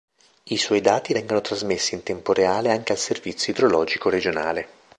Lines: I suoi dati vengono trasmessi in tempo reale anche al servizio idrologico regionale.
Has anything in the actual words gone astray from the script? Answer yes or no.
no